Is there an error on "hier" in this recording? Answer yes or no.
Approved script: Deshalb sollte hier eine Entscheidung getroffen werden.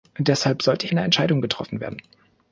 yes